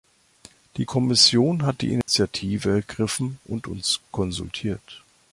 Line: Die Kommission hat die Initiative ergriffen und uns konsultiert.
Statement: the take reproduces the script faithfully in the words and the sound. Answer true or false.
false